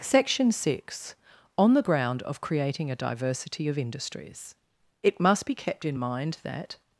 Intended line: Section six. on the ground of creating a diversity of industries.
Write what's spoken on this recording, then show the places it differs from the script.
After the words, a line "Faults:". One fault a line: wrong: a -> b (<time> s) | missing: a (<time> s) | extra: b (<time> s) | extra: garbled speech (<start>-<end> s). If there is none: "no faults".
Section six. on the ground of creating a diversity of industries. It must be kept in mind that
Faults:
extra: It must be kept in mind that (5.0 s)